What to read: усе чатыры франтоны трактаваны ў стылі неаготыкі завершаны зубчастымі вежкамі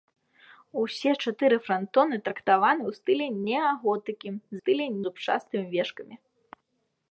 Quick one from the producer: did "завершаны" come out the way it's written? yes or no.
no